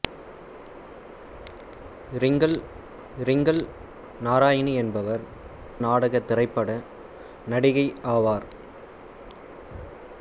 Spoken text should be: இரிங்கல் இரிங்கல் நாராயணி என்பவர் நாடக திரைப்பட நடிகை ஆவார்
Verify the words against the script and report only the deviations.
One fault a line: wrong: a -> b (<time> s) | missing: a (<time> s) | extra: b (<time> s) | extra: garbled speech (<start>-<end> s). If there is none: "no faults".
no faults